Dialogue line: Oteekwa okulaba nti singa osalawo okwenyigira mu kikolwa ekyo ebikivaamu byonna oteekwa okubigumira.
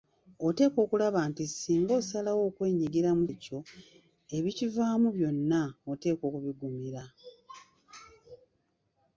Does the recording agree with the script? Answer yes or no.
no